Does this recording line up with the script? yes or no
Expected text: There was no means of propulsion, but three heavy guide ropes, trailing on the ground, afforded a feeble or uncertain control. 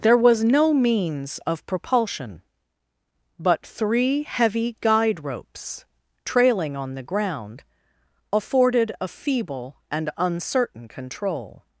no